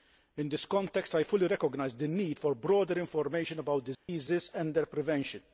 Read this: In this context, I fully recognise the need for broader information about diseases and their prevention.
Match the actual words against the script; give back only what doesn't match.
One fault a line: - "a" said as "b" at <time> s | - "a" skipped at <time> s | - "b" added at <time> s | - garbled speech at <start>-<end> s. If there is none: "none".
none